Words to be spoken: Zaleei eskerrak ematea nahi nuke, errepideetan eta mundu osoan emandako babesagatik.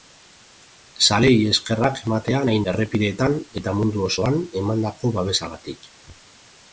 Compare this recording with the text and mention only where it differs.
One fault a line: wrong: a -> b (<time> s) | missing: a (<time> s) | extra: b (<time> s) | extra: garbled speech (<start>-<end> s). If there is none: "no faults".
missing: nuke (2.6 s)